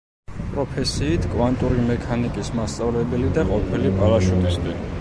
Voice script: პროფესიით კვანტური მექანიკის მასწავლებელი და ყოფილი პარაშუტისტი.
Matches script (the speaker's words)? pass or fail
pass